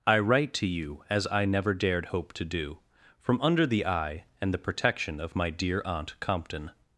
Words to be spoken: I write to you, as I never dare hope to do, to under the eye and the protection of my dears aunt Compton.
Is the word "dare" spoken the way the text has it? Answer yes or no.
no